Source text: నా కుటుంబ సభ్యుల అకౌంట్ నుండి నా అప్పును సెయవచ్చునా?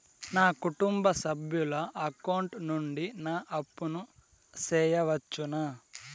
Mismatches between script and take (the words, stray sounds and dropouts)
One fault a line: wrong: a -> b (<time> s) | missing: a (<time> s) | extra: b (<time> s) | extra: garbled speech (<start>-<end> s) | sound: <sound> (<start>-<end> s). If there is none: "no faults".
no faults